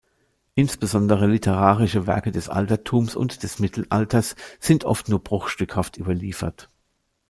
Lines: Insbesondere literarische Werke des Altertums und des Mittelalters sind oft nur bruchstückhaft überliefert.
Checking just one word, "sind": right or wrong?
right